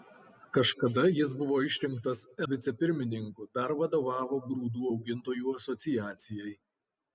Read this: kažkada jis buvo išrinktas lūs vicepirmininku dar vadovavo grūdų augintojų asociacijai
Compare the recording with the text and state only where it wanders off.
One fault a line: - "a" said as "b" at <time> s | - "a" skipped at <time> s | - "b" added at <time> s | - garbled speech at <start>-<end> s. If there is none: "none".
- "lūs" skipped at 2.2 s